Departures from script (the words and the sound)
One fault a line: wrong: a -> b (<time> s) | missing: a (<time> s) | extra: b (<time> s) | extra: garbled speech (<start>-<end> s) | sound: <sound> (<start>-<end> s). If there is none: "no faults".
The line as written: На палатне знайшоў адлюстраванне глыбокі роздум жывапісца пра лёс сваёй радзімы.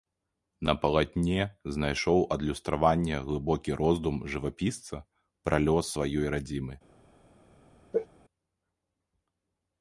sound: sneeze (7.9-8.1 s)